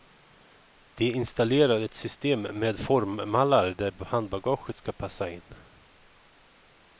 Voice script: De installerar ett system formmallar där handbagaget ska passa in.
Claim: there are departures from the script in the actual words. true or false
true